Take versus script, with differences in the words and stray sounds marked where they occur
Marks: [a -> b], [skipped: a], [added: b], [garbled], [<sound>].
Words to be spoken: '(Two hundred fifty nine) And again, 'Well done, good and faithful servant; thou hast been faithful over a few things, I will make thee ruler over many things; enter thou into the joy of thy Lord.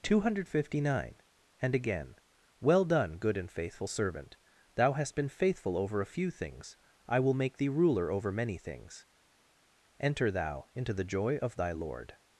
'(Two hundred fifty nine) And again, 'Well done, good and faithful servant; thou hast been faithful over a few things, I will make thee ruler over many things; enter thou into the joy of thy Lord.